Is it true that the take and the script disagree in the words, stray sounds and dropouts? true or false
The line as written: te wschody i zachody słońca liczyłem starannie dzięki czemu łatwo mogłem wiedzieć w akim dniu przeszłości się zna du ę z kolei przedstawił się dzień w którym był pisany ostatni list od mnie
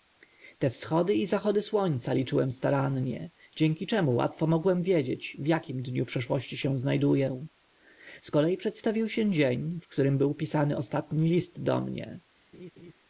true